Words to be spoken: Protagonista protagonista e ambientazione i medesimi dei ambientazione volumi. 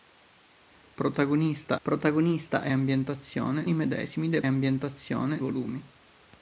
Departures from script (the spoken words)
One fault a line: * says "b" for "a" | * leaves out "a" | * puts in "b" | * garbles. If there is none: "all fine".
all fine